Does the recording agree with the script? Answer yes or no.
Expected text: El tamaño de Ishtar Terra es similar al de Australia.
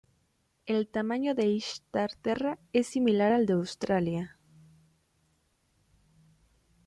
yes